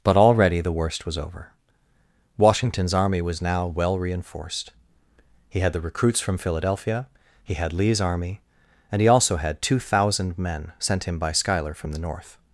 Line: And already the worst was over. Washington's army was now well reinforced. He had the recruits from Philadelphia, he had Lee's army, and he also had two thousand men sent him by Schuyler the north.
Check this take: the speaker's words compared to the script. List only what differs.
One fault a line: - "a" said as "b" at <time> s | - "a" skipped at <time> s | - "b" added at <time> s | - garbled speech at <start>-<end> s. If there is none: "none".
- "And" said as "But" at 0.0 s
- "from" added at 11.7 s